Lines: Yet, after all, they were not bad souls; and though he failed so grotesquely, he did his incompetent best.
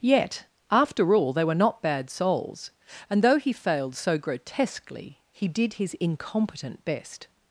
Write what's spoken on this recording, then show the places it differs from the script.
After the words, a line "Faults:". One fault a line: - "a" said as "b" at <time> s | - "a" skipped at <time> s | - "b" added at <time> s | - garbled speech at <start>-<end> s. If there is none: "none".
Yet, after all, they were not bad souls; and though he failed so grotesquely, he did his incompetent best.
Faults:
none